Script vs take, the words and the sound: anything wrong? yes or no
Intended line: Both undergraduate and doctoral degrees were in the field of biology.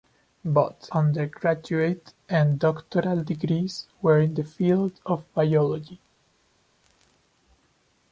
no